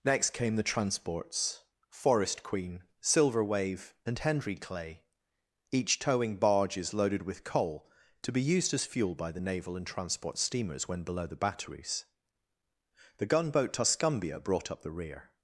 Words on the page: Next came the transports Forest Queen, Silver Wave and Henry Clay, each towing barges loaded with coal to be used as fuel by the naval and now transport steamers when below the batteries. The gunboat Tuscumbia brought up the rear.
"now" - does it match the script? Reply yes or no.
no